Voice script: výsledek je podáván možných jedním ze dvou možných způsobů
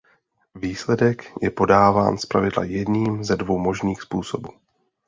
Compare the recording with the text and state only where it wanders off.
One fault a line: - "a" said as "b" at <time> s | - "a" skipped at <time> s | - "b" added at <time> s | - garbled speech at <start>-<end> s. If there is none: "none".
- "možných" said as "zpravidla" at 2.2 s